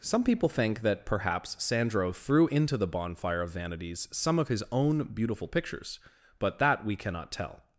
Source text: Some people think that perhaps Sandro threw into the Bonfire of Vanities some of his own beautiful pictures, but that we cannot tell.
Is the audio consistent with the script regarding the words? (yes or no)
yes